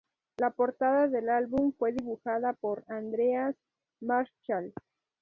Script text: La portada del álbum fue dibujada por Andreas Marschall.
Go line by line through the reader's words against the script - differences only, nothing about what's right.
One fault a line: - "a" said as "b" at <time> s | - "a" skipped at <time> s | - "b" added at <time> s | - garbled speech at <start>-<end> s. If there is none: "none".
none